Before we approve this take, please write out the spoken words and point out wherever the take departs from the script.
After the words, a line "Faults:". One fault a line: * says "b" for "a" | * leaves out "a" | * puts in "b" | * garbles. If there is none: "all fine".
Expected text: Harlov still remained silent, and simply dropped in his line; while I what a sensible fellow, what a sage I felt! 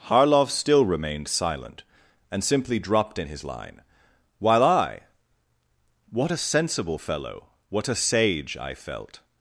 Harlov still remained silent, and simply dropped in his line; while I what a sensible fellow, what a sage I felt!
Faults:
all fine